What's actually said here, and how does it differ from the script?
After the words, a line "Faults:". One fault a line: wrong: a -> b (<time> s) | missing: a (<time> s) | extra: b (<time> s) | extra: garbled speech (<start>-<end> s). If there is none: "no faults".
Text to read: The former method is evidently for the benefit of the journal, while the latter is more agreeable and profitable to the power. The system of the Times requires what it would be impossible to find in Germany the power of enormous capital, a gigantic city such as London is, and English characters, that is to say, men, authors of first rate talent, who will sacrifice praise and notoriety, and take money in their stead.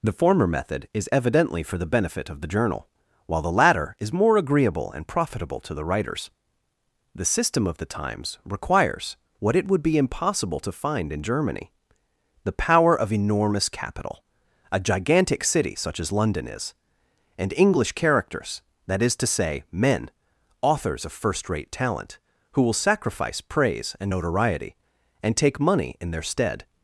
The former method is evidently for the benefit of the journal, while the latter is more agreeable and profitable to the writers. The system of the Times requires what it would be impossible to find in Germany the power of enormous capital, a gigantic city such as London is, and English characters, that is to say, men, authors of first rate talent, who will sacrifice praise and notoriety, and take money in their stead.
Faults:
wrong: power -> writers (5.8 s)